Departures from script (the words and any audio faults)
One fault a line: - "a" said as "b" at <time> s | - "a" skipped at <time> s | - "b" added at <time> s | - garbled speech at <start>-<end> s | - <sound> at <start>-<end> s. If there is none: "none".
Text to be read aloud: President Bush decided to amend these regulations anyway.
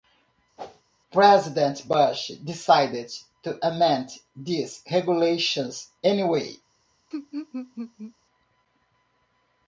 - whoosh at 0.6-0.8 s
- laugh at 7.1-8.1 s